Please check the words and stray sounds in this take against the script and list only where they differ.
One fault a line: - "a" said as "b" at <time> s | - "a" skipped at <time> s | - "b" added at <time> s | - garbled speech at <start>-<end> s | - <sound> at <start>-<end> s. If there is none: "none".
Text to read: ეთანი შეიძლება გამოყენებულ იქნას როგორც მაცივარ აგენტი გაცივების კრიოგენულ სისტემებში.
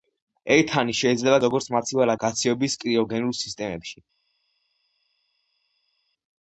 - "გამოყენებულ იქნას" skipped at 1.4 s
- "აგენტი" skipped at 2.1 s